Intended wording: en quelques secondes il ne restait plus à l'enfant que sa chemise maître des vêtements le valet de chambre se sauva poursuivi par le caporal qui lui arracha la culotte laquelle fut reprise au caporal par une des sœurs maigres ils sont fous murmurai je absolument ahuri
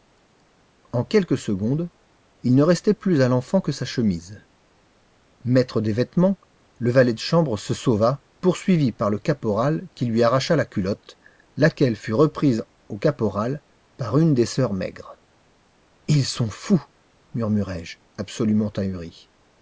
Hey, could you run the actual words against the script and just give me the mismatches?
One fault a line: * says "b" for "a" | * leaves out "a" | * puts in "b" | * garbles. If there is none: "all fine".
all fine